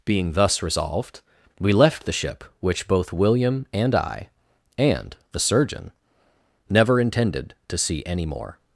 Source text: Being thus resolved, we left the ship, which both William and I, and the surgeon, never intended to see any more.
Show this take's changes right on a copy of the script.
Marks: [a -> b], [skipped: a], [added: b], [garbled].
Being thus resolved, we left the ship, which both William and I, and the surgeon, never intended to see any more.